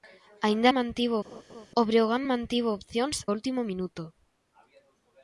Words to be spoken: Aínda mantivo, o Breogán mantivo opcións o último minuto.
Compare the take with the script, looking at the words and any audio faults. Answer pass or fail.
fail